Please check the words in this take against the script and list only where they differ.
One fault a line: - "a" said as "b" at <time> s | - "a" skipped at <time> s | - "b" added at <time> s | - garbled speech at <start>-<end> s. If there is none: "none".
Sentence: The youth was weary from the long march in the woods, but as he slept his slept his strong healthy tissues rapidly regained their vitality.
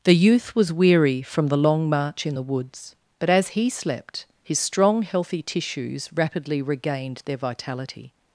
- "slept his" skipped at 4.6 s